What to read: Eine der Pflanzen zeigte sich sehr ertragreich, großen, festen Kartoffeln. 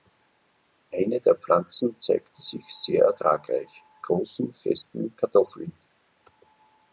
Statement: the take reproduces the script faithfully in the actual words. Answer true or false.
true